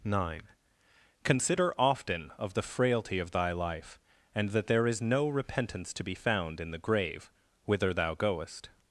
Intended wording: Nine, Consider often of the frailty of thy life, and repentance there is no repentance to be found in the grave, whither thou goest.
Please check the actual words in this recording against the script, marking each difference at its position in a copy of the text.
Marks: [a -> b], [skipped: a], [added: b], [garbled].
Nine, Consider often of the frailty of thy life, and [repentance -> that] there is no repentance to be found in the grave, whither thou goest.